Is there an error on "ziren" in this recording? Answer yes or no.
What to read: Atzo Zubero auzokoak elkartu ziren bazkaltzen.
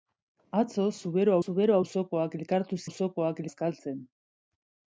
yes